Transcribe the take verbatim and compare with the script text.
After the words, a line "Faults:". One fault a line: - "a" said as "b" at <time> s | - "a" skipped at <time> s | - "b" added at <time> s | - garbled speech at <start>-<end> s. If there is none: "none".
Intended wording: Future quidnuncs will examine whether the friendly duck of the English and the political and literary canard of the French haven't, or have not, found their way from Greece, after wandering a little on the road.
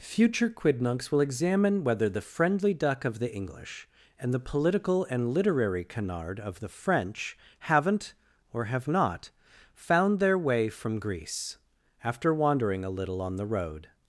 Future quidnuncs will examine whether the friendly duck of the English and the political and literary canard of the French haven't, or have not, found their way from Greece, after wandering a little on the road.
Faults:
none